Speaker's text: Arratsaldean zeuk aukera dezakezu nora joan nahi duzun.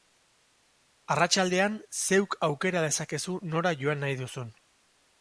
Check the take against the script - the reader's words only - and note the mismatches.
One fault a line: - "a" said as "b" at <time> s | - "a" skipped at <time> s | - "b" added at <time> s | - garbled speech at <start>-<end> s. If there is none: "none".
none